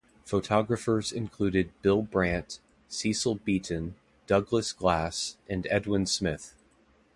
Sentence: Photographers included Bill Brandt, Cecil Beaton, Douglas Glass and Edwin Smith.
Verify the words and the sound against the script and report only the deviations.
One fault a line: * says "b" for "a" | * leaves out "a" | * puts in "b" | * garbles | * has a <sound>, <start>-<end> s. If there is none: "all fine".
all fine